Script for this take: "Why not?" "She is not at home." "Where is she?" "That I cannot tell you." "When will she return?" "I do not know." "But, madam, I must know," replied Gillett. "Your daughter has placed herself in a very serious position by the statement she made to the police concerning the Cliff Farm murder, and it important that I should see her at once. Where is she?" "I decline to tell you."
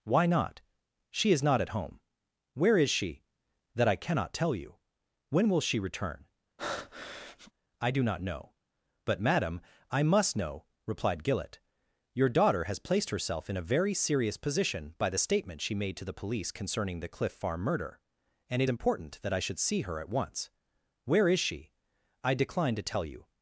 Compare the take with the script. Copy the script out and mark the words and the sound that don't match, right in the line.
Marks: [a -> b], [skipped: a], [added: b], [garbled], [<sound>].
"Why not?" "She is not at home." "Where is she?" "That I cannot tell you." "When will she return?" [breath] "I do not know." "But, madam, I must know," replied Gillett. "Your daughter has placed herself in a very serious position by the statement she made to the police concerning the Cliff Farm murder, and it important that I should see her at once. Where is she?" "I decline to tell you."